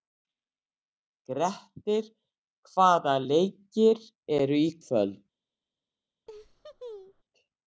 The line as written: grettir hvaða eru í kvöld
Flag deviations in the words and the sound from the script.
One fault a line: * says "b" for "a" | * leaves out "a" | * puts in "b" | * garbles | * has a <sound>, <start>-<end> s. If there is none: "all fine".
* puts in "leikir"
* has a laugh, 6.3-7.2 s